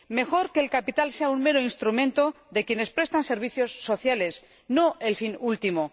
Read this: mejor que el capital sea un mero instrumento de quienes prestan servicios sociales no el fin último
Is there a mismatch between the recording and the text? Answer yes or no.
no